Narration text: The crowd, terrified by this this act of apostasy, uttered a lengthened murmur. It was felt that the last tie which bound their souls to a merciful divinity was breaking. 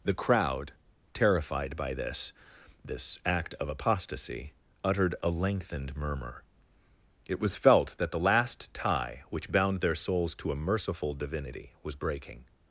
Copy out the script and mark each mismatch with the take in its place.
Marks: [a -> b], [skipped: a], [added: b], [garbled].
The crowd, terrified by this this act of apostasy, uttered a lengthened murmur. It was felt that the last tie which bound their souls to a merciful divinity was breaking.